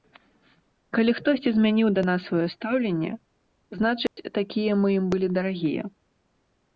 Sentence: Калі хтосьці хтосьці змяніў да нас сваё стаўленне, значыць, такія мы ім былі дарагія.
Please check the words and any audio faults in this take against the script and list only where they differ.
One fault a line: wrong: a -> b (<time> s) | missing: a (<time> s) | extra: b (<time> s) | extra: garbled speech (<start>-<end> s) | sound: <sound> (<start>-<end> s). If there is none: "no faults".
missing: хтосьці (1.5 s)
sound: dropout (4.1-4.2 s)